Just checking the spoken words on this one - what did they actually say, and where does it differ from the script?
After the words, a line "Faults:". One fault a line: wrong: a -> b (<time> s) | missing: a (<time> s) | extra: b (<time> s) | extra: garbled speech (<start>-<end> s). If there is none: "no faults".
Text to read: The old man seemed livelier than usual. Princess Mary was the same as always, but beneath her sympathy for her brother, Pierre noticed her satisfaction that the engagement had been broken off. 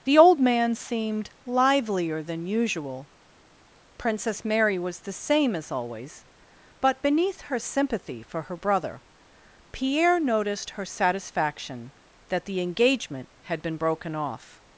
The old man seemed livelier than usual. Princess Mary was the same as always, but beneath her sympathy for her brother, Pierre noticed her satisfaction that the engagement had been broken off.
Faults:
no faults